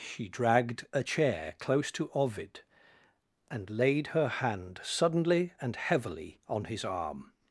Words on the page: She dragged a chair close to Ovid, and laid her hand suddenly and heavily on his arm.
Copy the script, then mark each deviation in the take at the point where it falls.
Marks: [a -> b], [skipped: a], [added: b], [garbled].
She dragged a chair close to Ovid, and laid her hand suddenly and heavily on his arm.